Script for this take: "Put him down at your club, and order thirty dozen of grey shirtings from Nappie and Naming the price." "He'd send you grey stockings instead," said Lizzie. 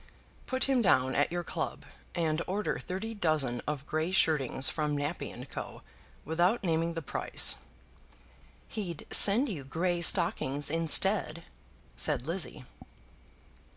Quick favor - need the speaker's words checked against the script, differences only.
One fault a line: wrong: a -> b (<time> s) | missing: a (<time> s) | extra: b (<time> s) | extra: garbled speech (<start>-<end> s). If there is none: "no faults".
extra: Co without (5.5 s)